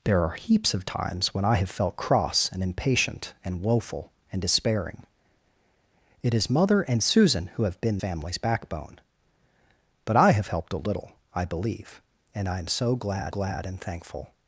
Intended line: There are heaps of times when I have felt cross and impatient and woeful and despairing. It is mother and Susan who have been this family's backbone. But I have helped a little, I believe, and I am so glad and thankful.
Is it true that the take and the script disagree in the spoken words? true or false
true